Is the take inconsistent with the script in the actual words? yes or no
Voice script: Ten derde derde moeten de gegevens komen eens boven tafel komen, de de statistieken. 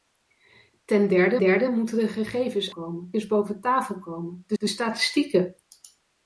no